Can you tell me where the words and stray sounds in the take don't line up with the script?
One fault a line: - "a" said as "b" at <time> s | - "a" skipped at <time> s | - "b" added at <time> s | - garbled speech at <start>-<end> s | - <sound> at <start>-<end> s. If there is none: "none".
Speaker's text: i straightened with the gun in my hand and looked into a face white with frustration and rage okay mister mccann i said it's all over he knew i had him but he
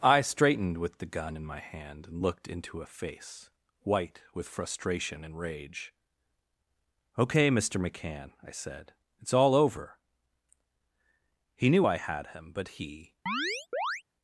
- chirp at 13.3-14.0 s